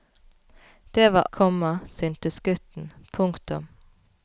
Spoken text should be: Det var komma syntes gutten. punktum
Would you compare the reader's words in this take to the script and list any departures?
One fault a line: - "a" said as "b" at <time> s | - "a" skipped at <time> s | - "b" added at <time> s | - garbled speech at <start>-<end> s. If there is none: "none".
none